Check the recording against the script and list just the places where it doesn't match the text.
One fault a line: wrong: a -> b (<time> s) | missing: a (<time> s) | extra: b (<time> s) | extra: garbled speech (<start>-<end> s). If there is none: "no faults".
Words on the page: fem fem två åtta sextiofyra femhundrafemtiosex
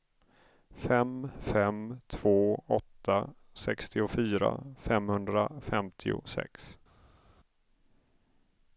no faults